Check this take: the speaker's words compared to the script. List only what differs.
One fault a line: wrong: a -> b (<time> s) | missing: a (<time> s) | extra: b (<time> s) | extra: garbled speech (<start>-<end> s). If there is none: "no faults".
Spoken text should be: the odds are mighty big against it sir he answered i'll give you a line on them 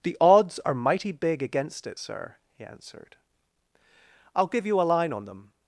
no faults